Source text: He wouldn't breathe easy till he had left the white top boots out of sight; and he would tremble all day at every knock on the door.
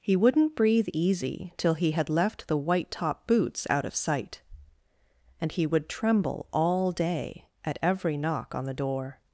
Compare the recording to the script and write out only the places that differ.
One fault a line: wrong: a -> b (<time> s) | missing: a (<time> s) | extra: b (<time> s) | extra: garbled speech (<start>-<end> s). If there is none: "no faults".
no faults